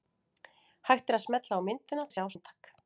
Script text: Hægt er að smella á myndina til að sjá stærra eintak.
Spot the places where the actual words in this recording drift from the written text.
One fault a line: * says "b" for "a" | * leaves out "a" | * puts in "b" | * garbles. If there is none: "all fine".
* leaves out "til"
* leaves out "stærra"